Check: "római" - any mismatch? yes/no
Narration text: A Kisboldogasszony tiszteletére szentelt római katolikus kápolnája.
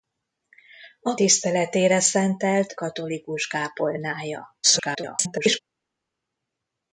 yes